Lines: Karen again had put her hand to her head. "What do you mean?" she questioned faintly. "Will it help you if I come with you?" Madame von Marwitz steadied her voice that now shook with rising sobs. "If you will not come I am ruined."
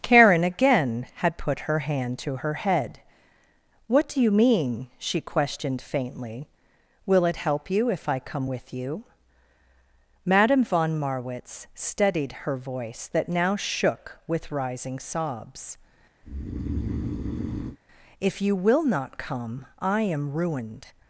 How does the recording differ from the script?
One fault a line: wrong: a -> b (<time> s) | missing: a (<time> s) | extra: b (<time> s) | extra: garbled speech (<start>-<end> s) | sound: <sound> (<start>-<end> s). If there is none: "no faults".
sound: breath (16.2-17.8 s)